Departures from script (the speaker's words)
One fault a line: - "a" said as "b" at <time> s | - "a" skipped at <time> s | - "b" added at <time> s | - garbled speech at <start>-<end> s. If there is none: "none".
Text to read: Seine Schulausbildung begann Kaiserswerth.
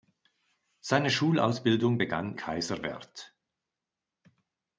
none